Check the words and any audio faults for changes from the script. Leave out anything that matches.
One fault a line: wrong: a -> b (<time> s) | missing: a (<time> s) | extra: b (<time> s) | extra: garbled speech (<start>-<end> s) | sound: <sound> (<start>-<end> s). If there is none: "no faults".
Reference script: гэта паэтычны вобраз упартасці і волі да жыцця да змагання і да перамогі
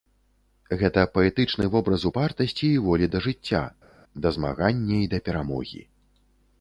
no faults